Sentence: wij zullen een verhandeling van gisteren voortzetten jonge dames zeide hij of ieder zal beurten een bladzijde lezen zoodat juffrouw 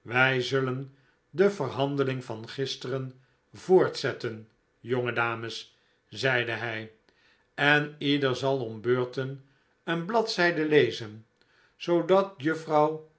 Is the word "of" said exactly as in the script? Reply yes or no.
no